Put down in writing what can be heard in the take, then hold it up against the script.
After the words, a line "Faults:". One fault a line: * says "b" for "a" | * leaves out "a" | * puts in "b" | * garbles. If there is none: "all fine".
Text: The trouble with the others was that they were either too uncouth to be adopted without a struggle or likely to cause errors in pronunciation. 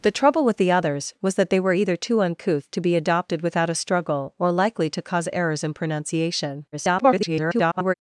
The trouble with the others was that they were either too uncouth to be adopted without a struggle or likely to cause errors in pronunciation. [garbled]
Faults:
* garbles